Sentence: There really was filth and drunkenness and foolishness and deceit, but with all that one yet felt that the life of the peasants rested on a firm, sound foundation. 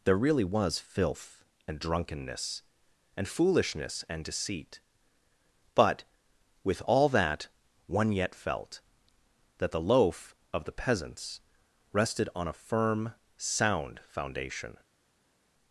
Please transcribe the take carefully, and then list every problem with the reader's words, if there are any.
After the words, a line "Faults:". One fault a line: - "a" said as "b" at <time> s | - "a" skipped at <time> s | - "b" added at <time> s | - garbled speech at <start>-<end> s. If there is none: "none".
There really was filth and drunkenness and foolishness and deceit, but with all that one yet felt that the loaf of the peasants rested on a firm, sound foundation.
Faults:
- "life" said as "loaf" at 9.8 s